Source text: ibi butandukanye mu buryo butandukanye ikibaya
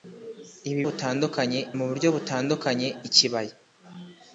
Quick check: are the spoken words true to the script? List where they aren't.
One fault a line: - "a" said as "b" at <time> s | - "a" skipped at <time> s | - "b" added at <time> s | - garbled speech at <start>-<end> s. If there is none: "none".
none